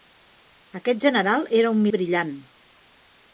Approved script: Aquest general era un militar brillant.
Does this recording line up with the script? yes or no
no